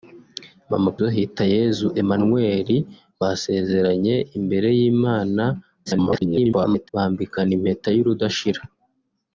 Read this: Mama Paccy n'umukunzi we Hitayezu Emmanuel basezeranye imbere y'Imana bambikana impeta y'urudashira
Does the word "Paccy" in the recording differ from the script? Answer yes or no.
yes